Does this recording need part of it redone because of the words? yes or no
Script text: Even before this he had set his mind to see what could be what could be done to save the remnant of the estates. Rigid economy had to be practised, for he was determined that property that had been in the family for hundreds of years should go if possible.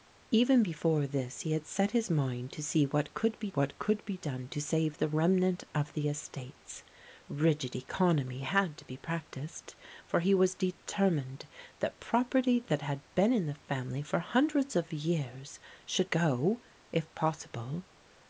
no